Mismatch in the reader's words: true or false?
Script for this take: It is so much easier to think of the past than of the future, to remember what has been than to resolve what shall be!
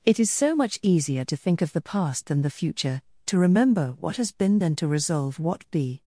true